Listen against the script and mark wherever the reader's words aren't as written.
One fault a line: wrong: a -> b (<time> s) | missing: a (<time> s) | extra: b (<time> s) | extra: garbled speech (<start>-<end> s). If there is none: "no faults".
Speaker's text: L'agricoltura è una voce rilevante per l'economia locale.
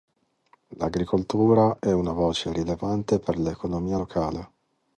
no faults